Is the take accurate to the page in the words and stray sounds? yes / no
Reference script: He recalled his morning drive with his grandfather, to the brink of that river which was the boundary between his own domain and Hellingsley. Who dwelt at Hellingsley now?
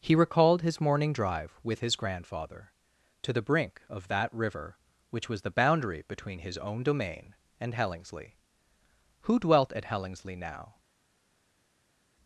yes